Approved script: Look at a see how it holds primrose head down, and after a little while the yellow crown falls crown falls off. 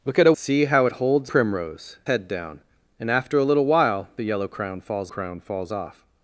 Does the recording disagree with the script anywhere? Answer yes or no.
no